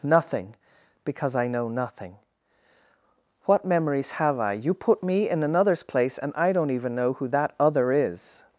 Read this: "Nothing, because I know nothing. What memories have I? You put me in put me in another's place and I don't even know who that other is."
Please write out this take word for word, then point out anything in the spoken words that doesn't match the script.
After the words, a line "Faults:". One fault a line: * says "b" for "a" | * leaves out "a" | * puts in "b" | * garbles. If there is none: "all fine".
"Nothing, because I know nothing. What memories have I? You put me in another's place and I don't even know who that other is."
Faults:
* leaves out "put me in"